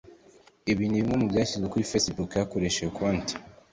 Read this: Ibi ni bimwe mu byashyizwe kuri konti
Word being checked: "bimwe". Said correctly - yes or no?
yes